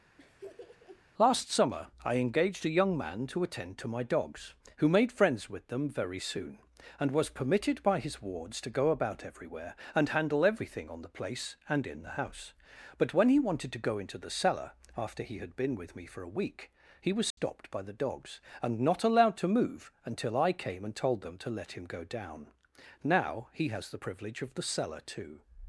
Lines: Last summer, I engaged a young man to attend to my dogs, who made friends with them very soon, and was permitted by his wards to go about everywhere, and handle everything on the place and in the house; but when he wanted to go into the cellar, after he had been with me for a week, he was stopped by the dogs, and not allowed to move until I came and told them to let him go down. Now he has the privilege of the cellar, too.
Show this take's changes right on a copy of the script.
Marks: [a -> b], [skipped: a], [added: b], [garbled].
Last summer, I engaged a young man to attend to my dogs, who made friends with them very soon, and was permitted by his wards to go about everywhere, and handle everything on the place and in the house; but when he wanted to go into the cellar, after he had been with me for a week, he was stopped by the dogs, and not allowed to move until I came and told them to let him go down. Now he has the privilege of the cellar, too.